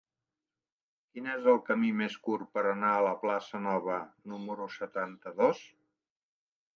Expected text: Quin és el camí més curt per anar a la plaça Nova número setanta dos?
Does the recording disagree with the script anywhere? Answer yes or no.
no